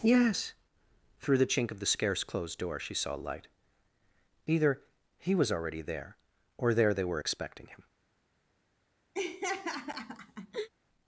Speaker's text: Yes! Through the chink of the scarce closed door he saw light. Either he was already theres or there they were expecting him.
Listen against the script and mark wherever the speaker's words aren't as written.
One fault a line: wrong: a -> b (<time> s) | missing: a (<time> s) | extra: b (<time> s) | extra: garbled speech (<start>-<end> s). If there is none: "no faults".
wrong: he -> she (2.8 s)
wrong: theres -> there (5.8 s)